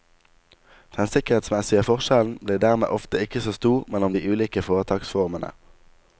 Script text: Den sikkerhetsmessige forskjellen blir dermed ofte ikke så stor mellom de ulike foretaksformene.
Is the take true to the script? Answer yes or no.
yes